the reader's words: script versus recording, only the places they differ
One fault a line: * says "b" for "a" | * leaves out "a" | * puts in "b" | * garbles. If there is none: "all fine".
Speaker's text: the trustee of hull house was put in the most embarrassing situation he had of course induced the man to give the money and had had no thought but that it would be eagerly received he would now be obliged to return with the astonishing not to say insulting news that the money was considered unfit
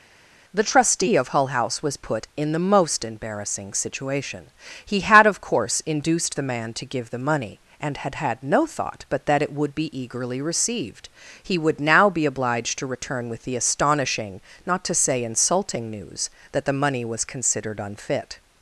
all fine